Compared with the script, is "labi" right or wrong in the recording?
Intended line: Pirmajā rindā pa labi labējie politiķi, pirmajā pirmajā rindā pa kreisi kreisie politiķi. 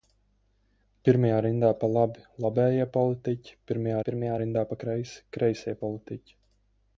right